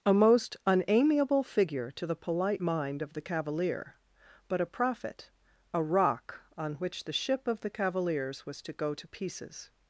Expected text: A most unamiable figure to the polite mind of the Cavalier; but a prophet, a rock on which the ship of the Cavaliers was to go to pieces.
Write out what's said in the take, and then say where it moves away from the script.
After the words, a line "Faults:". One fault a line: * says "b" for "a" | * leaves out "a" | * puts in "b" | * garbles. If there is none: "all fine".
A most unamiable figure to the polite mind of the Cavalier; but a prophet, a rock on which the ship of the Cavaliers was to go to pieces.
Faults:
all fine